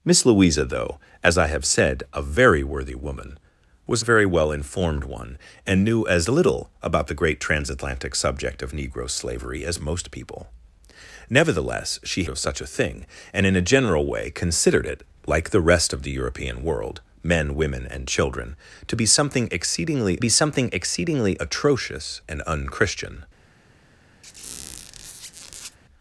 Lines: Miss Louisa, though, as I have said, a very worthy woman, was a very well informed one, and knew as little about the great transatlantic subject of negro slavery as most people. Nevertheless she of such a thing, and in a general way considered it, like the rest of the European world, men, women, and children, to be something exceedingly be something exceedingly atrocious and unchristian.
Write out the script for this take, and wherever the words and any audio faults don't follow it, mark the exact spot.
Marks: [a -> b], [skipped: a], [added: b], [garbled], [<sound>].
Miss Louisa, though, as I have said, a very worthy woman, was a very well informed one, and knew as little about the great transatlantic subject of negro slavery as most people. Nevertheless she of such a thing, and in a general way considered it, like the rest of the European world, men, women, and children, to be something exceedingly be something exceedingly atrocious and unchristian. [squeak]